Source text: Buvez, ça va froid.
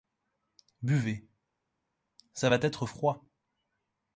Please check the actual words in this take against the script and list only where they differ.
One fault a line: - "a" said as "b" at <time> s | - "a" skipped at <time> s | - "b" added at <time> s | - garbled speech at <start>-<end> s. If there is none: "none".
- "être" added at 2.6 s